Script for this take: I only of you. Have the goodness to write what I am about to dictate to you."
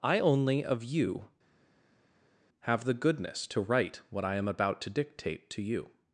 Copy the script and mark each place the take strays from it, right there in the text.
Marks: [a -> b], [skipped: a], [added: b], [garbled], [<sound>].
I only of you. Have the goodness to write what I am about to dictate to you."